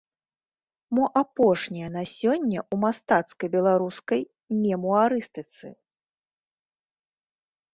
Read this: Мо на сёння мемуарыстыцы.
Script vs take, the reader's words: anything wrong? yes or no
yes